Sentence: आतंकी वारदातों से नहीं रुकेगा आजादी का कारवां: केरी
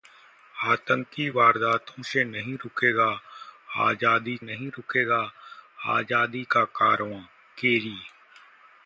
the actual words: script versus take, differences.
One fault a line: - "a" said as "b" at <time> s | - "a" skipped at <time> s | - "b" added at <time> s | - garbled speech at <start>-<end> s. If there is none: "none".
- "नहीं रुकेगा आजादी" added at 4.4 s